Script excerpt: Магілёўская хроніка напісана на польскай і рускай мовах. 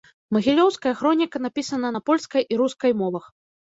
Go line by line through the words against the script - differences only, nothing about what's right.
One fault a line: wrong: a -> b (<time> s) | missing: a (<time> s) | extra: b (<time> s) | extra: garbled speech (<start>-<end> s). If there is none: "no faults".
no faults